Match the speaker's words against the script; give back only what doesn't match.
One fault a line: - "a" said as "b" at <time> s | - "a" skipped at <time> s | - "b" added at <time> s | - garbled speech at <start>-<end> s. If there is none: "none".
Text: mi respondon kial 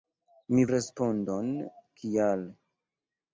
none